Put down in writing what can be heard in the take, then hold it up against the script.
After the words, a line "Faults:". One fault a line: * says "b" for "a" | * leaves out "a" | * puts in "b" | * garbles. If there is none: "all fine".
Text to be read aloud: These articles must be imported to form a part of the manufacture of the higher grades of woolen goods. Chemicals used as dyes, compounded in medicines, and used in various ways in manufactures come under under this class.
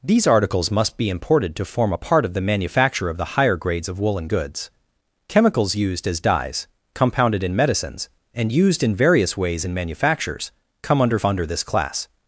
These articles must be imported to form a part of the manufacture of the higher grades of woolen goods. Chemicals used as dyes, compounded in medicines, and used in various ways in manufactures come under under this class.
Faults:
all fine